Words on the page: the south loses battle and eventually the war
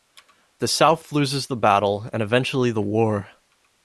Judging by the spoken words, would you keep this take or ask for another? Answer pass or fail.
fail